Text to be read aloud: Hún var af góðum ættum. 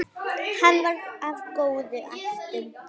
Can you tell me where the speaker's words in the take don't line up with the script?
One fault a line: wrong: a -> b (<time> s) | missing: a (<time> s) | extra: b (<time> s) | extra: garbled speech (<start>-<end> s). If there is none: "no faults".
wrong: Hún -> Hann (0.6 s)